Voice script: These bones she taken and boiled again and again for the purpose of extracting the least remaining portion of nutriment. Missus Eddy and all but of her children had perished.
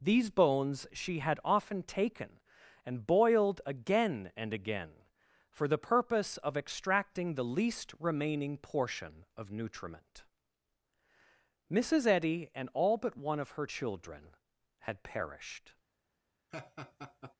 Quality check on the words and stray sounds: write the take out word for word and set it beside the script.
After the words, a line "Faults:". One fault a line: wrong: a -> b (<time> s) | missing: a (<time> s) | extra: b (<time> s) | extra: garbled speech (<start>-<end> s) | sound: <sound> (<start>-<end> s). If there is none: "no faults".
These bones she had often taken and boiled again and again for the purpose of extracting the least remaining portion of nutriment. Missus Eddy and all but one of her children had perished.
Faults:
extra: had often (1.2 s)
extra: one (13.2 s)
sound: laugh (16.5-17.4 s)